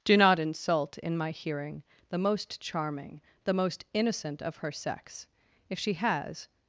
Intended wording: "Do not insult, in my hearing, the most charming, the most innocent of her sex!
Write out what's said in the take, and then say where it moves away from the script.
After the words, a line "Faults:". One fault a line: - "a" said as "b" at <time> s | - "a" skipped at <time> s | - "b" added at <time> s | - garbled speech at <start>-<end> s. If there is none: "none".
"Do not insult, in my hearing, the most charming, the most innocent of her sex! If she has
Faults:
- "If she has" added at 5.7 s